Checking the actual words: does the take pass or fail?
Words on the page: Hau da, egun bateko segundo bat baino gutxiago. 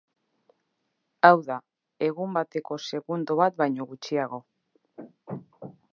pass